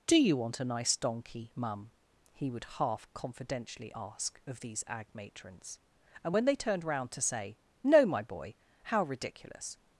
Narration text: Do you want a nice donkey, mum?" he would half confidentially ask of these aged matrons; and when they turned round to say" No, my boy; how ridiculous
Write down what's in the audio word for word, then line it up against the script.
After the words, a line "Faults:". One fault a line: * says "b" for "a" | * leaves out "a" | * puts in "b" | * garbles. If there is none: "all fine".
Do you want a nice donkey, mum?" he would half confidentially ask of these ag matrons; and when they turned round to say" No, my boy; how ridiculous
Faults:
* says "ag" for "aged"